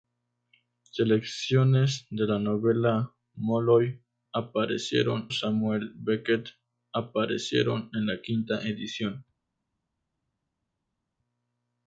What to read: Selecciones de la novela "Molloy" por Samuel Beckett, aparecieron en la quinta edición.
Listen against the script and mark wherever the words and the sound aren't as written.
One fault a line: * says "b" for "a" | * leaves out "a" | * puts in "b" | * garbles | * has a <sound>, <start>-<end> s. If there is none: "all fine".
* says "aparecieron" for "por"